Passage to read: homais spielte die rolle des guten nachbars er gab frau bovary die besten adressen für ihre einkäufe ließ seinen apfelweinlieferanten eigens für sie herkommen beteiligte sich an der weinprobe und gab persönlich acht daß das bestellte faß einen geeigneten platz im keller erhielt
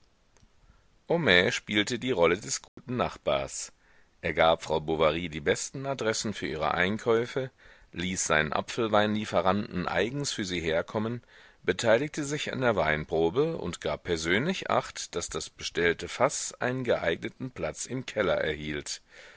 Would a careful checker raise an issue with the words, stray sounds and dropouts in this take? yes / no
yes